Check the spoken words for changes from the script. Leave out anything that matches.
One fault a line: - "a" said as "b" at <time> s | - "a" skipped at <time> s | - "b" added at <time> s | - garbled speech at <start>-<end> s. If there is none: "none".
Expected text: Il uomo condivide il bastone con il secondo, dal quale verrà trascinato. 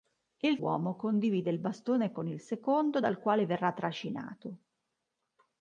none